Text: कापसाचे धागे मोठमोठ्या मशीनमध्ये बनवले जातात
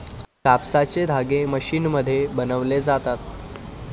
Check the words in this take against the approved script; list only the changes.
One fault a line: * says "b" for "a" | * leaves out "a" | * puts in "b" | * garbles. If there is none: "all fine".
* leaves out "मोठमोठ्या"